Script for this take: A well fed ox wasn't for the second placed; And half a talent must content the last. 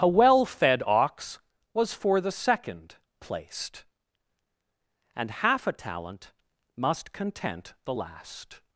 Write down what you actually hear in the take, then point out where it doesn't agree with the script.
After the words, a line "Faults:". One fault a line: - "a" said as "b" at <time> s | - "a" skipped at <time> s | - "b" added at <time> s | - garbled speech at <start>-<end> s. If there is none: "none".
A well fed ox was for the second placed; And half a talent must content the last.
Faults:
- "wasn't" said as "was" at 1.7 s